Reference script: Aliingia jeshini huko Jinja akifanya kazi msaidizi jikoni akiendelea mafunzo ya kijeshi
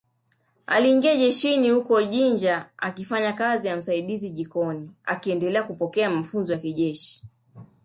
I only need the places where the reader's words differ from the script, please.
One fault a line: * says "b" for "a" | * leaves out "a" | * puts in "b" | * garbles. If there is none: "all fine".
* puts in "ya"
* puts in "kupokea"